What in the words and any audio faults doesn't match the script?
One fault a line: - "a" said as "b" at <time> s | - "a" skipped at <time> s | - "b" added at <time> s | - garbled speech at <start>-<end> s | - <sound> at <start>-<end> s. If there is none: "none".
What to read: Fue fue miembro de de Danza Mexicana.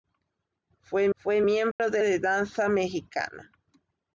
- dropout at 1.7-1.8 s